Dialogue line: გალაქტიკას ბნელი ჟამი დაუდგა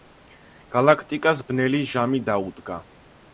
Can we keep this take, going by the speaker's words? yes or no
yes